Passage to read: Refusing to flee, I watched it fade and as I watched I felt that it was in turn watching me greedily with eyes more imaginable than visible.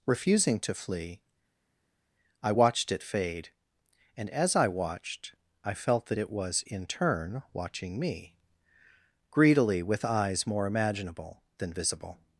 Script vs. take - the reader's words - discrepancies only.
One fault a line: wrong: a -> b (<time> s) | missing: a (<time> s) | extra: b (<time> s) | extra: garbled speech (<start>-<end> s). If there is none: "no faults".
no faults